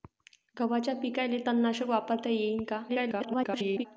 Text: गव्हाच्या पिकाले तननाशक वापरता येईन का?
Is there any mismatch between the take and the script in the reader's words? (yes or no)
yes